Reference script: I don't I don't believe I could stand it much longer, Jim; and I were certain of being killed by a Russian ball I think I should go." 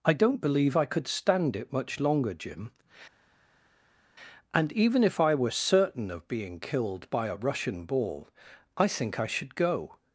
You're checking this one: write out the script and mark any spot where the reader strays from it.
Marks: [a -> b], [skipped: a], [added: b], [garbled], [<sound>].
I don't [skipped: I don't] believe I could stand it much longer, Jim; and [added: even if] I were certain of being killed by a Russian ball I think I should go."